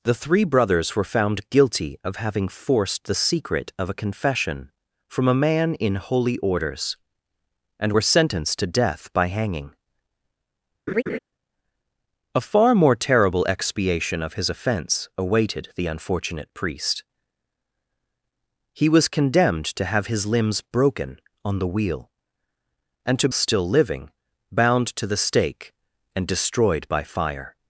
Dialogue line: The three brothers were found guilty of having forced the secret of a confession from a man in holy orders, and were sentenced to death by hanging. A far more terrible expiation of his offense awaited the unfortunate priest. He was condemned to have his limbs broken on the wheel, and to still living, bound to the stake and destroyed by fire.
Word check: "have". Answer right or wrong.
right